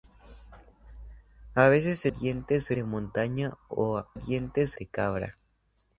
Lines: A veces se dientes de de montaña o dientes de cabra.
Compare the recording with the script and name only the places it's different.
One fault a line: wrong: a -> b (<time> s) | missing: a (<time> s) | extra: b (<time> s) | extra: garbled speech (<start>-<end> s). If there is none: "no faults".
no faults